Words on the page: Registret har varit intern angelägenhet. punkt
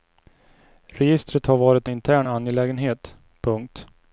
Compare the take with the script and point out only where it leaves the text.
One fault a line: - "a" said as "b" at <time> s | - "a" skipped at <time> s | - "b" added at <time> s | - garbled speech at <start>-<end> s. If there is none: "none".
none